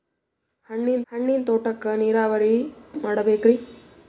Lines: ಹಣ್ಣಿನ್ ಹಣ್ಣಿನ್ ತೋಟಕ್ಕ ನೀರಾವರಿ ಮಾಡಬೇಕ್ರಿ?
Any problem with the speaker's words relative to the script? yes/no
no